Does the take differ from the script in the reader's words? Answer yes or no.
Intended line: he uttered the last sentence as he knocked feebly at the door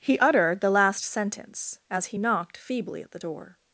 no